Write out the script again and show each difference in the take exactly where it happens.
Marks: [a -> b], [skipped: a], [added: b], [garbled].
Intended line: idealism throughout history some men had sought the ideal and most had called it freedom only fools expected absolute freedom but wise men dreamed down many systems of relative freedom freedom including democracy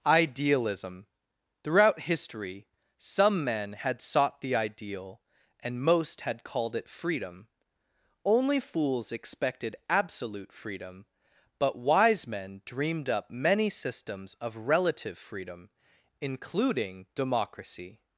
idealism throughout history some men had sought the ideal and most had called it freedom only fools expected absolute freedom but wise men dreamed [down -> up] many systems of relative freedom [skipped: freedom] including democracy